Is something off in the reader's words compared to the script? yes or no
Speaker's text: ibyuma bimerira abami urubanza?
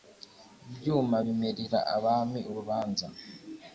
no